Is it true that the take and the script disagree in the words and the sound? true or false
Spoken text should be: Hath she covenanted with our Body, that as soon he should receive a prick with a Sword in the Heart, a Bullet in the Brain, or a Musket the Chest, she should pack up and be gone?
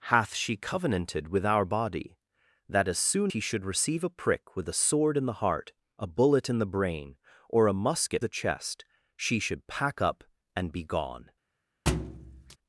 true